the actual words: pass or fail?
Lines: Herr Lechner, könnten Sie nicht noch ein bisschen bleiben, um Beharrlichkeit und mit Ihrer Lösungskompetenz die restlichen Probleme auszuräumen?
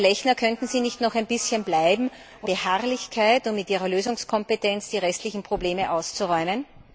pass